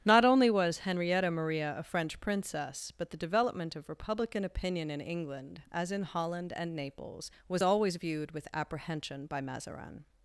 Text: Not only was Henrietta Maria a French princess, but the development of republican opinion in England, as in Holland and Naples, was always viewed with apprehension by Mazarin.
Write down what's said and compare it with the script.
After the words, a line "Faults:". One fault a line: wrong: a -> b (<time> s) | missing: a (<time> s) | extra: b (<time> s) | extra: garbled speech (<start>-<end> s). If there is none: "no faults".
Not only was Henrietta Maria a French princess, but the development of republican opinion in England, as in Holland and Naples, was always viewed with apprehension by Mazarin.
Faults:
no faults